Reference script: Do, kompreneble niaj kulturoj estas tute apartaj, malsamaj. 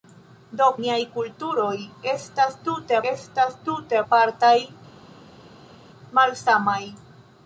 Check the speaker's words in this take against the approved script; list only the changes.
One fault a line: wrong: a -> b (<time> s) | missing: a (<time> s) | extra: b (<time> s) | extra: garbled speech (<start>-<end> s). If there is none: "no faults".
missing: kompreneble (0.7 s)
extra: estas tute (3.1 s)